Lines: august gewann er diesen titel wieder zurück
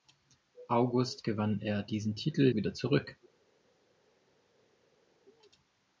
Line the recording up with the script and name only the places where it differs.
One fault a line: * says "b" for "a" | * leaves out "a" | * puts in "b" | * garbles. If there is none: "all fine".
all fine